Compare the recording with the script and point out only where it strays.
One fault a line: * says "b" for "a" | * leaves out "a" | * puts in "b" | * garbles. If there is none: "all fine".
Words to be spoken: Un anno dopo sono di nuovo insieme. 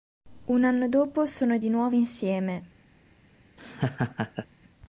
all fine